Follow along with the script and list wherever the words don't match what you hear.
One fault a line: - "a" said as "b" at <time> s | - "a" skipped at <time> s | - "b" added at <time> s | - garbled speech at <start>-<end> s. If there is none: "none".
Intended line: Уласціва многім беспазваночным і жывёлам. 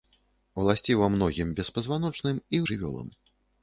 none